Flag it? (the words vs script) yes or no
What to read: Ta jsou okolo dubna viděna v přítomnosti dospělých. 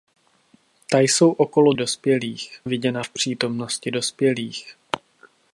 yes